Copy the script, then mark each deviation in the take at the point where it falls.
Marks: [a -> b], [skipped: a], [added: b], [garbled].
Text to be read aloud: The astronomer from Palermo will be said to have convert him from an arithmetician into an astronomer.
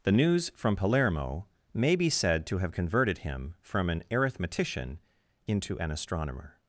The [astronomer -> news] from Palermo [will -> may] be said to have [convert -> converted] him from an arithmetician into an astronomer.